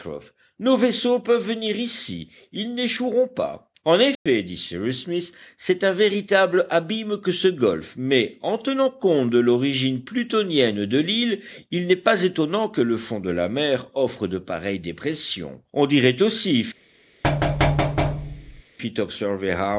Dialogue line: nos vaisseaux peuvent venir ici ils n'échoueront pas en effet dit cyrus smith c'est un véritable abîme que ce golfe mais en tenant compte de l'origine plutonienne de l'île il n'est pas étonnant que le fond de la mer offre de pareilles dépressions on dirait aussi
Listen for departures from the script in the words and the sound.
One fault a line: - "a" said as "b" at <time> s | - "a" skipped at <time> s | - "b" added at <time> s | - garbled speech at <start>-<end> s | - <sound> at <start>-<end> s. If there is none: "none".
- dropout at 4.1-4.3 s
- thud at 17.2-18.6 s